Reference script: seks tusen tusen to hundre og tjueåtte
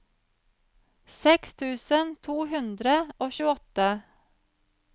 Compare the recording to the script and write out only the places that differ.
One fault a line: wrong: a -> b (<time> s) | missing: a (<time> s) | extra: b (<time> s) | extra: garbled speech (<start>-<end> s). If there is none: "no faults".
missing: tusen (2.1 s)